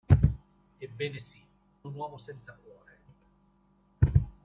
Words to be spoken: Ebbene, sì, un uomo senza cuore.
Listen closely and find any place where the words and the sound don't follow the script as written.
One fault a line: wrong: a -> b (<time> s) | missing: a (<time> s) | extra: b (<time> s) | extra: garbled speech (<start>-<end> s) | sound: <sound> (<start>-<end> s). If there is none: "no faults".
no faults